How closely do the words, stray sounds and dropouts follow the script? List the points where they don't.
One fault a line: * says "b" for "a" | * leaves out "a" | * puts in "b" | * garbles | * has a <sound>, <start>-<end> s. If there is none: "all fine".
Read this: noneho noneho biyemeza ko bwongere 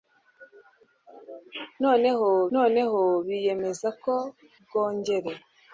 all fine